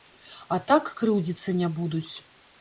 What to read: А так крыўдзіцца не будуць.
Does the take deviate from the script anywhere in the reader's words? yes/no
no